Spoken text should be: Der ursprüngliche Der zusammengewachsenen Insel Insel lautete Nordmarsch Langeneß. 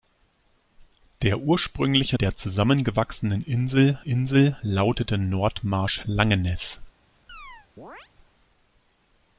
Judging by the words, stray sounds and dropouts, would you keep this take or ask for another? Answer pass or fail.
fail